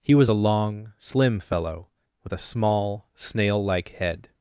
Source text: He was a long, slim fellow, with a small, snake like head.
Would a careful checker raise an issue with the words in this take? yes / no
yes